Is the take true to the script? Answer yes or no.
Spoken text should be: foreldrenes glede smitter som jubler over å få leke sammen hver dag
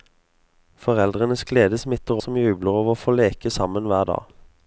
yes